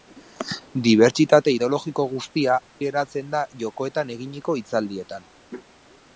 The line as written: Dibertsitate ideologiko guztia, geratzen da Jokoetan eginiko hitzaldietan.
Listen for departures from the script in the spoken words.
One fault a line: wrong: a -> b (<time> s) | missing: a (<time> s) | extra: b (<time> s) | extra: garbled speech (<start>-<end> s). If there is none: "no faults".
no faults